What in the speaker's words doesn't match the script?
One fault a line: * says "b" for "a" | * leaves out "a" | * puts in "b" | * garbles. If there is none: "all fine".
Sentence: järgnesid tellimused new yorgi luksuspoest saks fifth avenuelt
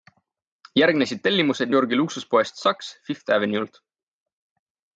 * leaves out "new"